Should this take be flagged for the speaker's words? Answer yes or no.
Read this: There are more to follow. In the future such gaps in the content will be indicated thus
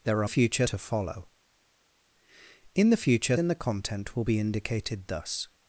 yes